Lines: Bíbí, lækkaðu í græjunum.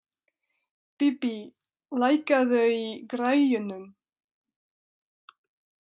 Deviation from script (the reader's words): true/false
false